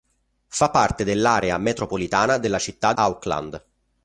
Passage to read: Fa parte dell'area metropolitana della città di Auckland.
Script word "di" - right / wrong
wrong